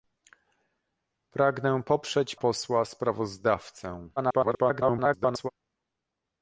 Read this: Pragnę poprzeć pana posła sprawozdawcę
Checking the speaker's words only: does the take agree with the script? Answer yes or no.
no